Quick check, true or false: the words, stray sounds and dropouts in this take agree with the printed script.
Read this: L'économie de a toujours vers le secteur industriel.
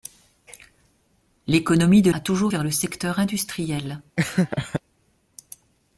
false